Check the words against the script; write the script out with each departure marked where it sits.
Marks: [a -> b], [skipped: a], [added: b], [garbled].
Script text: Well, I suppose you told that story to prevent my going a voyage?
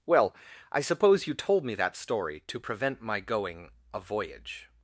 Well, I suppose you told [added: me] that story to prevent my going a voyage?